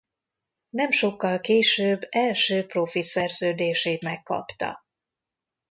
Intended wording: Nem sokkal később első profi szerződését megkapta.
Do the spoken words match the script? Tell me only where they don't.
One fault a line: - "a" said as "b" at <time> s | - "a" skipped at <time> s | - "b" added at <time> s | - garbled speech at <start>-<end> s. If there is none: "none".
none